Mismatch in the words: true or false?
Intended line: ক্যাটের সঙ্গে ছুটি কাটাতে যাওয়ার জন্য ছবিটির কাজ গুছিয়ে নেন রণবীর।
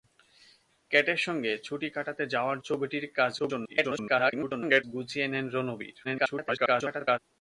true